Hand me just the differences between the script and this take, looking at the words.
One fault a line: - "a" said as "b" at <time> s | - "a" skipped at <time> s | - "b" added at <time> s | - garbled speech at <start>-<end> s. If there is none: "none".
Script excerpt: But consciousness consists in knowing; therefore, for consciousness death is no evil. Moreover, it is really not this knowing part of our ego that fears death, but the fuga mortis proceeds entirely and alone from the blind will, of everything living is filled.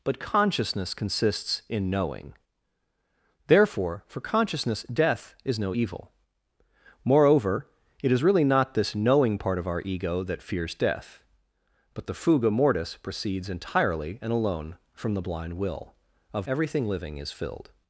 none